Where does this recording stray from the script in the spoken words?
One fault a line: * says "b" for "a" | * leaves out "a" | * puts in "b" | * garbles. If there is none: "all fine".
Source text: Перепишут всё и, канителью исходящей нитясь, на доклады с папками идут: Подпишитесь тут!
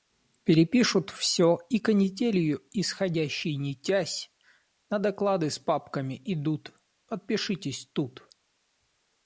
all fine